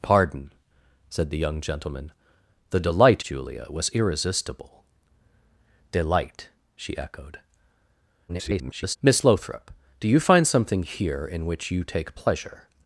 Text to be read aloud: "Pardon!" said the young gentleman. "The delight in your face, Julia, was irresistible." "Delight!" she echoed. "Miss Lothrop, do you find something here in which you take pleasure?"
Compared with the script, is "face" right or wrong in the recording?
wrong